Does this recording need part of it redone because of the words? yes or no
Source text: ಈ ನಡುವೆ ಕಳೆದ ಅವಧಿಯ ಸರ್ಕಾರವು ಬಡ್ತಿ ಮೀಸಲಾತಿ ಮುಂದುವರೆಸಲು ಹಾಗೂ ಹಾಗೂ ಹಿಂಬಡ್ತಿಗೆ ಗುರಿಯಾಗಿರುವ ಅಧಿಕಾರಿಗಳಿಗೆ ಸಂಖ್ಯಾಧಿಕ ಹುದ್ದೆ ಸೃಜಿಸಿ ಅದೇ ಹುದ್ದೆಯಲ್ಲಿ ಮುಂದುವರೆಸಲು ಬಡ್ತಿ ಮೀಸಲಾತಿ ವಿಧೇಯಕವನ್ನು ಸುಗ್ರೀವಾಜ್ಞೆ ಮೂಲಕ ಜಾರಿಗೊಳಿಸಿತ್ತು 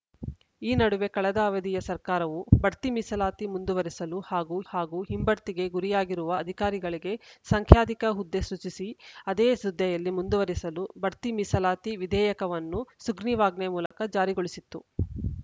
no